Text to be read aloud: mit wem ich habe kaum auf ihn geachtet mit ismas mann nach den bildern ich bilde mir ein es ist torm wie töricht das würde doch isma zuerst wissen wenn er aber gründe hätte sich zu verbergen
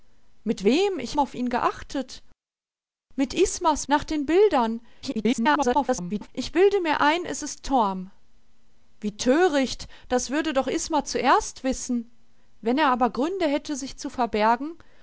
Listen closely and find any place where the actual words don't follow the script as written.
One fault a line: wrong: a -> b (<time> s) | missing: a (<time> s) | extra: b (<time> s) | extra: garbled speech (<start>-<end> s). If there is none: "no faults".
missing: habe kaum (1.2 s)
missing: mann (3.9 s)
extra: garbled speech (5.0-6.3 s)